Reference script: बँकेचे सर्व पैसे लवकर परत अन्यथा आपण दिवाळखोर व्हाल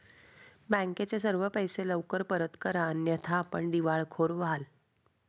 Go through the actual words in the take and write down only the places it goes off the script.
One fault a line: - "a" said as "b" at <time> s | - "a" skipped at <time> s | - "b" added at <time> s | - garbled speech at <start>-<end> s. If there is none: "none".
- "करा" added at 2.6 s